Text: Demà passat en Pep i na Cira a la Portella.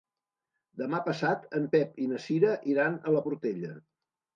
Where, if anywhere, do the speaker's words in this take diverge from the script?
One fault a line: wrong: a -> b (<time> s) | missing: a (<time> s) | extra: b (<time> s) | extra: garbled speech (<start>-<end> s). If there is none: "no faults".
extra: iran (2.8 s)